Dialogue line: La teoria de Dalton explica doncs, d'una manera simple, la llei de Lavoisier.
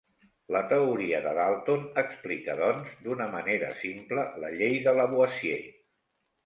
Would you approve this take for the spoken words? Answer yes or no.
yes